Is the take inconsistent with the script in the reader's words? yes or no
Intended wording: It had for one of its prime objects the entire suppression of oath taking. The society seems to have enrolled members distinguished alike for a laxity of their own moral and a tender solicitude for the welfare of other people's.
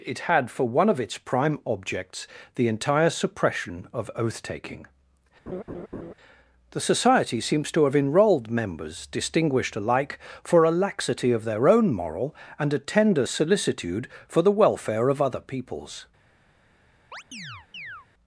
no